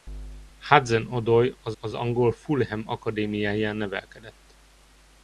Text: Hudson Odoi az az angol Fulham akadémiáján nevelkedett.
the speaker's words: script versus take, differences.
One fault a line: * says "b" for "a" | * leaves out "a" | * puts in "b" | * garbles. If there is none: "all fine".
all fine